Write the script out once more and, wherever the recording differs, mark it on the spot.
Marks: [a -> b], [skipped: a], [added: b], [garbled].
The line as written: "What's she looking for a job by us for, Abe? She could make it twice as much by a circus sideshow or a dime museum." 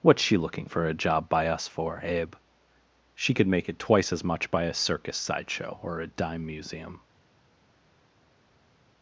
"What's she looking for a job by us for, Abe? She could make it twice as much by a circus sideshow or a dime museum."